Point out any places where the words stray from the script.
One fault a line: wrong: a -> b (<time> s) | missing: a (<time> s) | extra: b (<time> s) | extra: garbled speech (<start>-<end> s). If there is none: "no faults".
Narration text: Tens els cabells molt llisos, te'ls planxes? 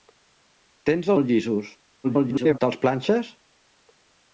missing: els cabells (1.1 s)
extra: garbled speech (2.0-2.6 s)